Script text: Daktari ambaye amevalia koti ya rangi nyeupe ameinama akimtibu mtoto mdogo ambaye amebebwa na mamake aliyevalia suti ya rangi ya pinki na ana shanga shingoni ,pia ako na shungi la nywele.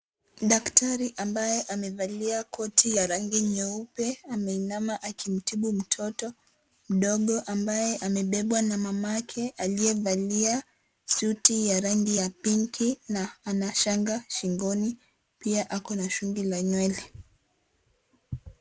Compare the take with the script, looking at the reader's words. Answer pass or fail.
pass